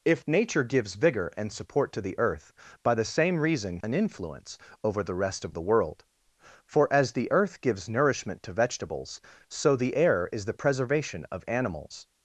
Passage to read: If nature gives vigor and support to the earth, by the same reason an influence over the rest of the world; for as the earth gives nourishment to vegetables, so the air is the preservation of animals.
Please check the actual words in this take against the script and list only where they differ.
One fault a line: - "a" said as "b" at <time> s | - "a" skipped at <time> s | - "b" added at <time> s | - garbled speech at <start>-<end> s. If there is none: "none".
none